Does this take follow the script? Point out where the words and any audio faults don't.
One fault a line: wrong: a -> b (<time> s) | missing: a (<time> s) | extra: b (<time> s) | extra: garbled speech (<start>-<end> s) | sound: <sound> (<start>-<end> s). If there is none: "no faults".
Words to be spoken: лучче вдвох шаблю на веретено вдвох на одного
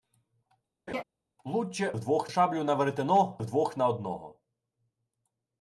sound: laugh (0.9-1.0 s)